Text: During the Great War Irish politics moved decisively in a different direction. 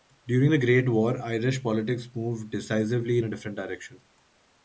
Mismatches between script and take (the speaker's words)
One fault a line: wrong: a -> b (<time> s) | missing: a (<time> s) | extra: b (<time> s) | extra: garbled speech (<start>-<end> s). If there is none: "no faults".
no faults